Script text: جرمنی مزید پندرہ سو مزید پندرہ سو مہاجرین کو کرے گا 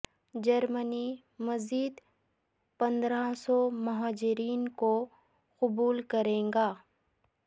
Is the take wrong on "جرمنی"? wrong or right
right